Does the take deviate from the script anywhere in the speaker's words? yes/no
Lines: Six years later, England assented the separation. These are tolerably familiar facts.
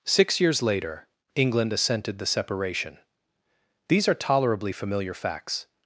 no